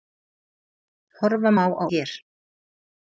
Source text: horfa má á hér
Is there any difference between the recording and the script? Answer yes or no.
no